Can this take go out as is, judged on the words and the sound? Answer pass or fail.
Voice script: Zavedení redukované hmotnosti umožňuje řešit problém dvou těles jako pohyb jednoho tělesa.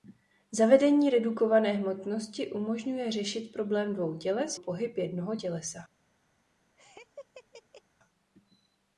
fail